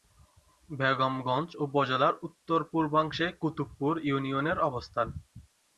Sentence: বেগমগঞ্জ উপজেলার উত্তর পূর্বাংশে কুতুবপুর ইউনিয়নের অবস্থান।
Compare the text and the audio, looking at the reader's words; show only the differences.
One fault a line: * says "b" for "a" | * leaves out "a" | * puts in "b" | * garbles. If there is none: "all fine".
all fine